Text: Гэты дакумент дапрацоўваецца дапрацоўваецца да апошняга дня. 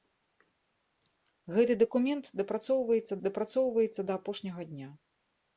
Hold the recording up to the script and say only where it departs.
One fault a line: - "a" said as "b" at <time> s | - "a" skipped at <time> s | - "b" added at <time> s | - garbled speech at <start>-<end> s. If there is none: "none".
none